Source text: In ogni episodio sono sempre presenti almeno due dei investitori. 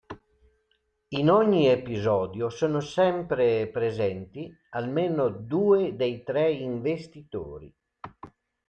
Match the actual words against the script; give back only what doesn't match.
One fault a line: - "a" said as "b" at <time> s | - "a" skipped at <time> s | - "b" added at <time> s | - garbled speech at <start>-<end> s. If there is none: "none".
- "tre" added at 6.2 s